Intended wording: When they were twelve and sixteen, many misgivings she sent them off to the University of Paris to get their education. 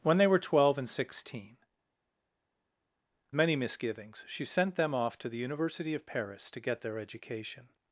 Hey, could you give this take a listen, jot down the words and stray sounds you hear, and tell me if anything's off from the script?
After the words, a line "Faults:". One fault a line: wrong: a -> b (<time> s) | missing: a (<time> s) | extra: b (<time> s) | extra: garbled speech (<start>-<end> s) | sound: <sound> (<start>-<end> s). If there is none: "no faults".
When they were twelve and sixteen, many misgivings she sent them off to the University of Paris to get their education.
Faults:
no faults